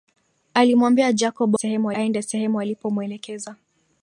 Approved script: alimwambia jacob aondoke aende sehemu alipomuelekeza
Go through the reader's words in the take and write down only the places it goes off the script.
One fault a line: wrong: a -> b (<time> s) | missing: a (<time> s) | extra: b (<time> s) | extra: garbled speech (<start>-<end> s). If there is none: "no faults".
wrong: aondoke -> sehemu (1.5 s)